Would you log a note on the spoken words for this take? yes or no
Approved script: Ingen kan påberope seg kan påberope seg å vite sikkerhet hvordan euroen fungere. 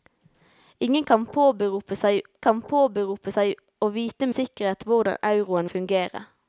no